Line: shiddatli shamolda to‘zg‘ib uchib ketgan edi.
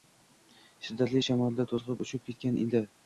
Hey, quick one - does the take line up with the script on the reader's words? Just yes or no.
yes